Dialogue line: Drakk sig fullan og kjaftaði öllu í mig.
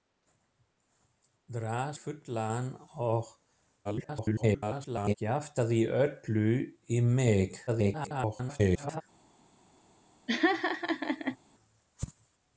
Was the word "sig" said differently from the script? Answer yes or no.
yes